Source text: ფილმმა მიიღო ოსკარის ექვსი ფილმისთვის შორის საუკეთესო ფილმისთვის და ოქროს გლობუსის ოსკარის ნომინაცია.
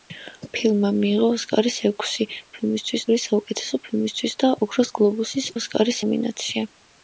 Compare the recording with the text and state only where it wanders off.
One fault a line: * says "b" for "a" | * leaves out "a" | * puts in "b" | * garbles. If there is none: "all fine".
all fine